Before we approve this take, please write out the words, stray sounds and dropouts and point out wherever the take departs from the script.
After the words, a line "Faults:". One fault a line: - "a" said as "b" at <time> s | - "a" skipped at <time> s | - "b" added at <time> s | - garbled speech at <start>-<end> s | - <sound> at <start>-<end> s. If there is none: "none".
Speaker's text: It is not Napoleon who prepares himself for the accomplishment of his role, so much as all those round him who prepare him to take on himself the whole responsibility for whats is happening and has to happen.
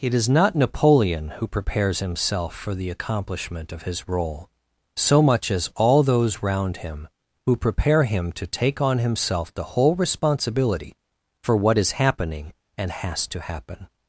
It is not Napoleon who prepares himself for the accomplishment of his role, so much as all those round him who prepare him to take on himself the whole responsibility for what is happening and has to happen.
Faults:
- "whats" said as "what" at 11.5 s